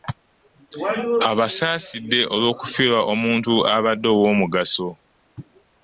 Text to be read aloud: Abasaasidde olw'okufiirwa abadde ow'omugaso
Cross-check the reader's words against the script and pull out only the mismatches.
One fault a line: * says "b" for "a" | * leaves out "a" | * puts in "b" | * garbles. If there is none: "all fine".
* puts in "omuntu"